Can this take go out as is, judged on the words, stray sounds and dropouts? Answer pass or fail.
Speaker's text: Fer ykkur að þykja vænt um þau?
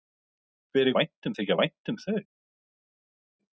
fail